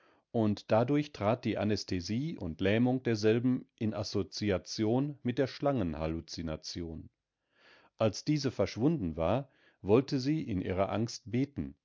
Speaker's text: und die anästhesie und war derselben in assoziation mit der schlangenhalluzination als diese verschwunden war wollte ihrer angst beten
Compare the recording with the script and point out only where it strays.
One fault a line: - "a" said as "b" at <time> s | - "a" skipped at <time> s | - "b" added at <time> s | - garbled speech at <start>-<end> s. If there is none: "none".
- "dadurch trat" added at 0.7 s
- "war" said as "lähmung" at 2.6 s
- "sie in" added at 10.2 s